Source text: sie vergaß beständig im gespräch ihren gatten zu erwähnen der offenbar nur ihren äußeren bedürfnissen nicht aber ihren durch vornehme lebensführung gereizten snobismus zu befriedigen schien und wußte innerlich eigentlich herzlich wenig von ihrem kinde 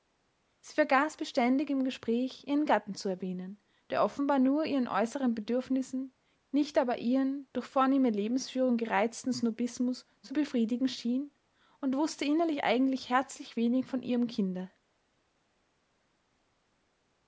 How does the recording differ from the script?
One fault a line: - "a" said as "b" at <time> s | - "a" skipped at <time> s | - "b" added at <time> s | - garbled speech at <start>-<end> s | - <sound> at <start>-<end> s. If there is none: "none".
none